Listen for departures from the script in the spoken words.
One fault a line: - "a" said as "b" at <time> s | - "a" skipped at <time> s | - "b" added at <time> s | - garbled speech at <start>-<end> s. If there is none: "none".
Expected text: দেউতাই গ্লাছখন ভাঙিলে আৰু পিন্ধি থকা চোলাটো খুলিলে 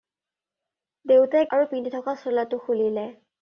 - "গ্লাছখন ভাঙিলে" skipped at 1.5 s